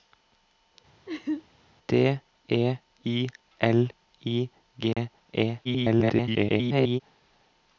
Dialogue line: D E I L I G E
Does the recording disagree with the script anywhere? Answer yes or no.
yes